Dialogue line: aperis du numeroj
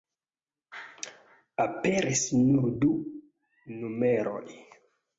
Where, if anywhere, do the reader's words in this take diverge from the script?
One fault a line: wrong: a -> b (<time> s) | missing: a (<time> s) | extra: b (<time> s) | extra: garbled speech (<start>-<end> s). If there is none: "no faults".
extra: nur (2.4 s)